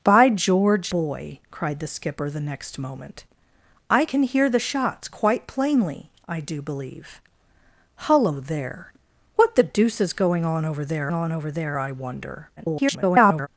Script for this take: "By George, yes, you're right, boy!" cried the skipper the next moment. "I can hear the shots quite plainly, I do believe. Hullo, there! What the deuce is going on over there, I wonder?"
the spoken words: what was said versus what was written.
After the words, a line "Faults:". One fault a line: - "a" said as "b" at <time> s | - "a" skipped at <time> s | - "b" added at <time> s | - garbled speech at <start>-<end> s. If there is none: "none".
"By George, boy!" cried the skipper the next moment. "I can hear the shots quite plainly, I do believe. Hullo, there! What the deuce is going on over there on over there, I wonder?" [garbled]
Faults:
- "yes you're right" skipped at 0.9 s
- "on over there" added at 11.1 s
- garbled speech at 12.6-13.5 s